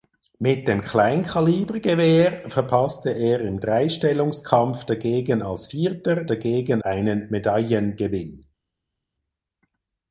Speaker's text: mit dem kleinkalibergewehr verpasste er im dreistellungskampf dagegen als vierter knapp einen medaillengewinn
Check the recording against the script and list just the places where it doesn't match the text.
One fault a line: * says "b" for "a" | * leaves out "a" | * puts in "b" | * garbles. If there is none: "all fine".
* says "dagegen" for "knapp"